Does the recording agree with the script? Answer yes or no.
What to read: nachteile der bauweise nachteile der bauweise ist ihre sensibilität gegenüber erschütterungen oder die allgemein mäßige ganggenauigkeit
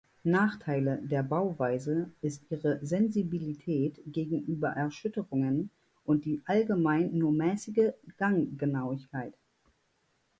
no